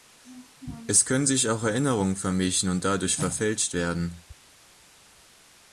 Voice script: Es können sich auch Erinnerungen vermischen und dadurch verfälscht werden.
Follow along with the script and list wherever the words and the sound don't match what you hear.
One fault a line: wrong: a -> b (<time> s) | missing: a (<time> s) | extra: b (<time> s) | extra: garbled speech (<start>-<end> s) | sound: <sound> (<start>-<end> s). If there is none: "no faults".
no faults